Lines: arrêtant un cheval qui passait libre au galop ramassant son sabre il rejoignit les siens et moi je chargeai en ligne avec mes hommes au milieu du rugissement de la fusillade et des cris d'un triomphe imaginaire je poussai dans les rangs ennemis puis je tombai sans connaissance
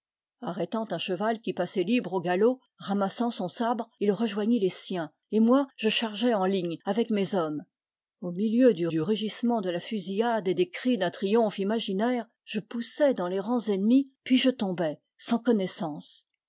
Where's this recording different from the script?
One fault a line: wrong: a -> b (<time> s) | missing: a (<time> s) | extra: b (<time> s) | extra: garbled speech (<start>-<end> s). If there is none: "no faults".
extra: du (8.9 s)